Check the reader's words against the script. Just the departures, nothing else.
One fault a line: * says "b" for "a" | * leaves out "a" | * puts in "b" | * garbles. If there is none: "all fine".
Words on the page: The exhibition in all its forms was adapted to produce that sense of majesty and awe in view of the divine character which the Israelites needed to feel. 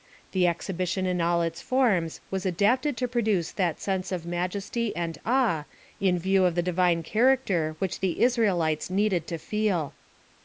all fine